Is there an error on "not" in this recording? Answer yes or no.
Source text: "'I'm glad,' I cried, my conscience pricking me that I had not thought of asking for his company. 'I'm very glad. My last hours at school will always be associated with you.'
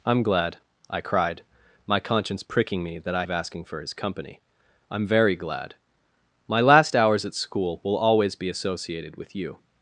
yes